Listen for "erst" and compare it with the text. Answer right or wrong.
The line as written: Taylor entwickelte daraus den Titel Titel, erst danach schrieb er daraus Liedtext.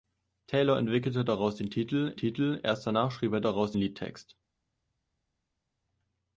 right